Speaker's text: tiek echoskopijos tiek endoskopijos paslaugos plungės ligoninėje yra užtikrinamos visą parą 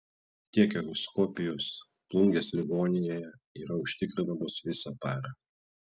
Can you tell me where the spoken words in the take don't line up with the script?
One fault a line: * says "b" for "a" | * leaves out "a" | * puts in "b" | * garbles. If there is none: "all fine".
* leaves out "tiek endoskopijos paslaugos"